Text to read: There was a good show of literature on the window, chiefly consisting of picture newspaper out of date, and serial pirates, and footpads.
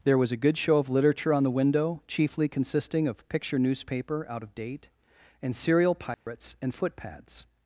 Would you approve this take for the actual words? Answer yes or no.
yes